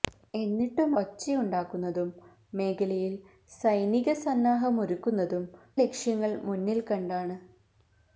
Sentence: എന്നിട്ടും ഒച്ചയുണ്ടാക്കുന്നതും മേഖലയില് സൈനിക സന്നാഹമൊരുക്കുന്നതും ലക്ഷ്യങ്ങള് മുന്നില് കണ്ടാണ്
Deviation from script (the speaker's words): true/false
false